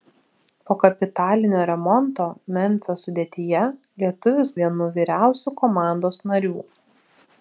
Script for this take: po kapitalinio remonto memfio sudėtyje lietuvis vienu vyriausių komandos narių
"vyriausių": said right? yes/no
yes